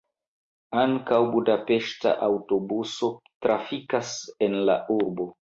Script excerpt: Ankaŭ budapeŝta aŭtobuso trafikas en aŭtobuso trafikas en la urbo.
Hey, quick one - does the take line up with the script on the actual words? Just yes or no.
no